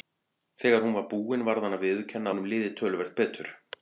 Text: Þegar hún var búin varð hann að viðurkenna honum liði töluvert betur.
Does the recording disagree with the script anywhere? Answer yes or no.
no